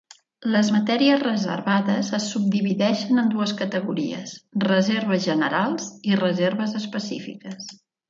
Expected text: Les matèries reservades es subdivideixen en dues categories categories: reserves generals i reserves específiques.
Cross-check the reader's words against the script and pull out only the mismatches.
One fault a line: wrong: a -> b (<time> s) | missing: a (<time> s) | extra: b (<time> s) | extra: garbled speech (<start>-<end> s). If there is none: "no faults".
missing: categories (4.4 s)